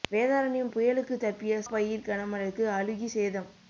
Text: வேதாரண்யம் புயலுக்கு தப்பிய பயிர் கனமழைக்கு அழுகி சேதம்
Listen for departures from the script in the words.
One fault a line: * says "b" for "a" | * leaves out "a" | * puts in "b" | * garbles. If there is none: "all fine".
all fine